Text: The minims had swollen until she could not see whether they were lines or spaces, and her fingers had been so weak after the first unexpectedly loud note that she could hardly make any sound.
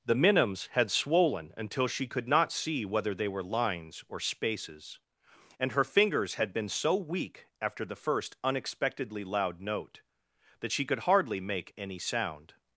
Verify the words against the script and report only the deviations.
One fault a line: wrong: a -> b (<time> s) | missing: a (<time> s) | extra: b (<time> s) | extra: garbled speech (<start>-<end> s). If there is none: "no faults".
no faults